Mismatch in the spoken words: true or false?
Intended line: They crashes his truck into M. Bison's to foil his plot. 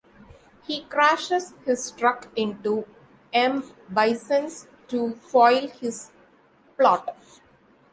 true